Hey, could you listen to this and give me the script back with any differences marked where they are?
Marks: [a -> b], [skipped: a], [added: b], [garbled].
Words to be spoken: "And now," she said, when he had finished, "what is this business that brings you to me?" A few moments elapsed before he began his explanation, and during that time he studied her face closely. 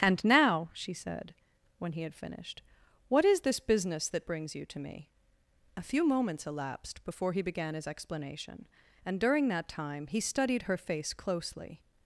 "And now," she said, when he had finished, "what is this business that brings you to me?" A few moments elapsed before he began his explanation, and during that time he studied her face closely.